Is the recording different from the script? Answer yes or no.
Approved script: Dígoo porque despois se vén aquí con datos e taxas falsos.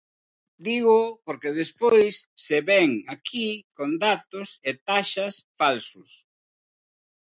no